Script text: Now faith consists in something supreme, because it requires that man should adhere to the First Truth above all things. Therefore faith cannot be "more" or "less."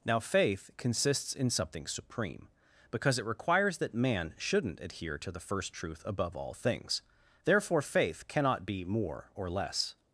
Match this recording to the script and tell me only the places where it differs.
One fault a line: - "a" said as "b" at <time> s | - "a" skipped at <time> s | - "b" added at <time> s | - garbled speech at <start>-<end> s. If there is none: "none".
- "should" said as "shouldn't" at 4.4 s